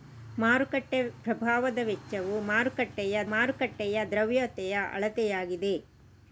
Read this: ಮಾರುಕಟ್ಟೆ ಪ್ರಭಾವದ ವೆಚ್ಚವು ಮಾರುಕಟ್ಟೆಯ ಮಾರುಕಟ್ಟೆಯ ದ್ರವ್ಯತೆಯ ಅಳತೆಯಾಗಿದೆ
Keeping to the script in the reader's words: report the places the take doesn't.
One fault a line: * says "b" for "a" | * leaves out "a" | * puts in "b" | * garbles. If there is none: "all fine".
all fine